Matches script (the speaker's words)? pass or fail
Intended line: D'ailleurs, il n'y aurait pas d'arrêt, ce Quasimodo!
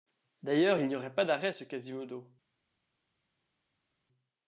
pass